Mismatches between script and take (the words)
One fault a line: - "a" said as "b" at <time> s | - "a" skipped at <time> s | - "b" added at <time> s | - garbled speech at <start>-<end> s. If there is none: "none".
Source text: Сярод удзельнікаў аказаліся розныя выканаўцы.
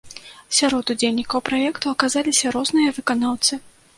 - "праекту" added at 1.5 s